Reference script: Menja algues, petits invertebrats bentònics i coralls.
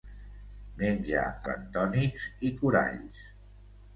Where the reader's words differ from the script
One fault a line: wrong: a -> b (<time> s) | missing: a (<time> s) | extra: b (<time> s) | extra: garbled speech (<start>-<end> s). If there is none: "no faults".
missing: algues petits invertebrats (1.2 s)